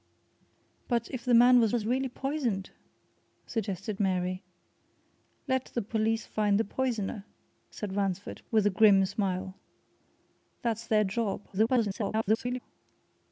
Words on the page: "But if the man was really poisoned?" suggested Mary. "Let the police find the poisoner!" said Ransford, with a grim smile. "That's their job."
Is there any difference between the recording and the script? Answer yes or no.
yes